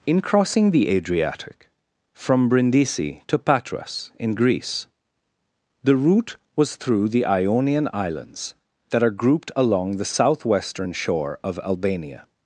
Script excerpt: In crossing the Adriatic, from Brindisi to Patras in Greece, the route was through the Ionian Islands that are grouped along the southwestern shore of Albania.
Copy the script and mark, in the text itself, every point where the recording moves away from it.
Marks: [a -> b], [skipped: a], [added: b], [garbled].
In crossing the Adriatic, from Brindisi to Patras in Greece, the route was through the Ionian Islands that are grouped along the southwestern shore of Albania.